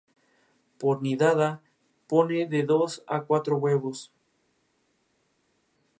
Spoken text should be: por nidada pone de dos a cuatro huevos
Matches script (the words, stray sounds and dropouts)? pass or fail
pass